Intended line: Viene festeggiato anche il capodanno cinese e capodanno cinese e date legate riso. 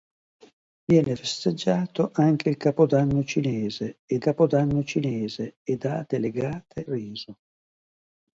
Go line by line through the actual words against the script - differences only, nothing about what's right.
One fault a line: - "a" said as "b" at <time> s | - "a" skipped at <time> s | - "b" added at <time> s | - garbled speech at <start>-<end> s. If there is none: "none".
none